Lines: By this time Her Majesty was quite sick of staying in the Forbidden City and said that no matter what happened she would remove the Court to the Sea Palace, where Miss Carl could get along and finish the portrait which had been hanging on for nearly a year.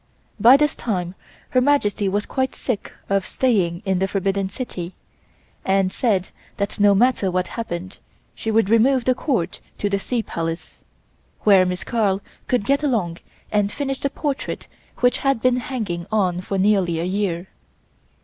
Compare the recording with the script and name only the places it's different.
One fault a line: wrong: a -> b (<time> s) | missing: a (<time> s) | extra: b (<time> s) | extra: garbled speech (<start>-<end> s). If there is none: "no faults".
no faults